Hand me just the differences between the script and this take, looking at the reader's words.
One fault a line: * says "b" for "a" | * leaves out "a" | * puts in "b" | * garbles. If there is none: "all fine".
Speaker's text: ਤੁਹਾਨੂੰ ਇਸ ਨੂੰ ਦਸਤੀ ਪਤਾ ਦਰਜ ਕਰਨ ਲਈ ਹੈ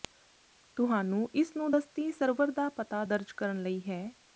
* puts in "ਸਰਵਰ ਦਾ"